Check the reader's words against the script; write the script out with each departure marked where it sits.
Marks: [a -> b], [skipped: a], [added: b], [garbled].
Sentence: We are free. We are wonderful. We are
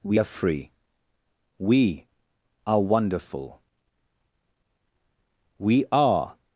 We are free. We are wonderful. We are